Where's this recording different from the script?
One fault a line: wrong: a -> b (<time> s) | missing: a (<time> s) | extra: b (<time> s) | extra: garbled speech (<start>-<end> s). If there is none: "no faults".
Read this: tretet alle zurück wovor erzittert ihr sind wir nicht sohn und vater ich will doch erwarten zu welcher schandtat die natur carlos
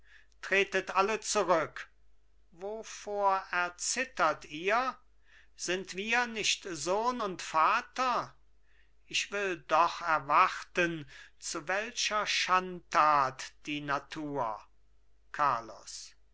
no faults